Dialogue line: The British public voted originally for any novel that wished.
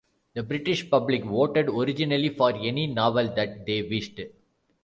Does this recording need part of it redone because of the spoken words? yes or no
yes